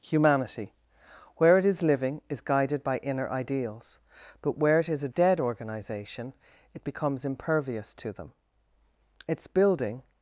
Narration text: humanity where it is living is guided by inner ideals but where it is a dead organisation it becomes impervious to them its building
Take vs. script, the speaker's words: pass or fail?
pass